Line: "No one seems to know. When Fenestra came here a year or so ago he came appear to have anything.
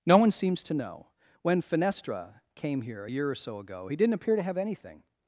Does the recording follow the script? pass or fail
fail